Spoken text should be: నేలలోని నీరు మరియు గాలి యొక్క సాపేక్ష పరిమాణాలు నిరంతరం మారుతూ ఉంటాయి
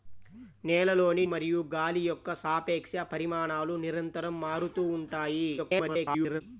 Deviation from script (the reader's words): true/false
true